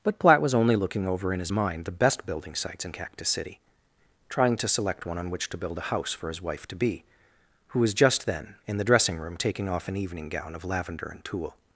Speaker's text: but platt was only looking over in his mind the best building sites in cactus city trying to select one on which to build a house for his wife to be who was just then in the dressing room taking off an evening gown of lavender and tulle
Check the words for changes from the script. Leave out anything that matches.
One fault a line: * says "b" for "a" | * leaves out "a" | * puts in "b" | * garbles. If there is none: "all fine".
all fine